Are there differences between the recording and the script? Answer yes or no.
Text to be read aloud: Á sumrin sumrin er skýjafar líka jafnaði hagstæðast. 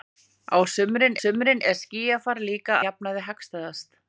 no